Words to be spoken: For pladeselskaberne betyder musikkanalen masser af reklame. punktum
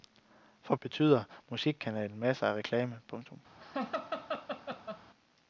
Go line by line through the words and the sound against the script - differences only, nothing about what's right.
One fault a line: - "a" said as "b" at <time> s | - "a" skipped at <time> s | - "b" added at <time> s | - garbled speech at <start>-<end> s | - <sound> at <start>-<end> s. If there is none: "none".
- "pladeselskaberne" skipped at 0.8 s
- laugh at 3.6-5.0 s